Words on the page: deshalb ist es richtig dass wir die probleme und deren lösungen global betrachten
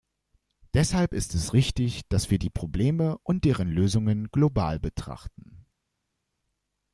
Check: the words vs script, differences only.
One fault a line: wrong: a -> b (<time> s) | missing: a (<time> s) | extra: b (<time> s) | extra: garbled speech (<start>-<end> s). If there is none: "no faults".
no faults